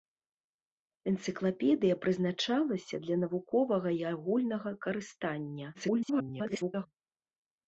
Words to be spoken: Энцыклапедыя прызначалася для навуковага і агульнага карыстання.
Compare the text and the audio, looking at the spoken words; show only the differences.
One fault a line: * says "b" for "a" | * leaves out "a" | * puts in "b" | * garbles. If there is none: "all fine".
* garbles